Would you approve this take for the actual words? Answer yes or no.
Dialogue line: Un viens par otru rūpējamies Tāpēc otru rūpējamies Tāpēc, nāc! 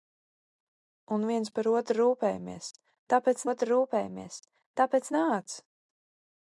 yes